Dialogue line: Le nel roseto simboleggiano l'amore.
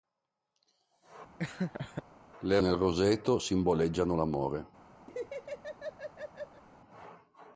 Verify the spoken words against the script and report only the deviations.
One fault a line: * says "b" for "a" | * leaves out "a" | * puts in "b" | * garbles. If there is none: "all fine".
all fine